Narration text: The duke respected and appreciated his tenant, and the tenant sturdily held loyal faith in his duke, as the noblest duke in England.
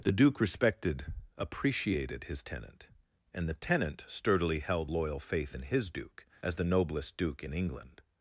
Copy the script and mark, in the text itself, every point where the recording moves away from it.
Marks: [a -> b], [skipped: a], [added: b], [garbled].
The duke respected [skipped: and] appreciated his tenant, and the tenant sturdily held loyal faith in his duke, as the noblest duke in England.